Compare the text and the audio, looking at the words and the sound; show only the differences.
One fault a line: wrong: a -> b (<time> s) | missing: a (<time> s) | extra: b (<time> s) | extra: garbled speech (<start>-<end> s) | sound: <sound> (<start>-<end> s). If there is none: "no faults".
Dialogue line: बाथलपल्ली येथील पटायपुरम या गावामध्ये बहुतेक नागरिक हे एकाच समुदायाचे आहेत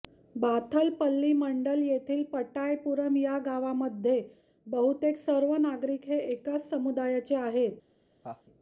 extra: मंडल (1.3 s)
extra: सर्व (5.2 s)
sound: laugh (8.2-8.4 s)